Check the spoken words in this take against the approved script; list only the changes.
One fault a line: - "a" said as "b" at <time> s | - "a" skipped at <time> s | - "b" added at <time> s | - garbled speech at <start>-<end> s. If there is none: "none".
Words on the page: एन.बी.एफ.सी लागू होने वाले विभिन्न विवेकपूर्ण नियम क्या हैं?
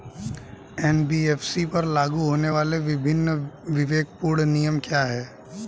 - "पर" added at 1.7 s